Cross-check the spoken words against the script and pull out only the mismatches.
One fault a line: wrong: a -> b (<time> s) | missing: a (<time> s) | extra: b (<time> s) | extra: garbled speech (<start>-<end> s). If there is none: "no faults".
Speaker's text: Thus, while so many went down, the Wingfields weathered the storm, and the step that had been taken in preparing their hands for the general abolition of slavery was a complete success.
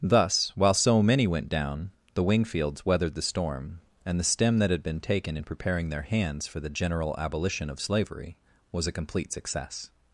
wrong: step -> stem (4.2 s)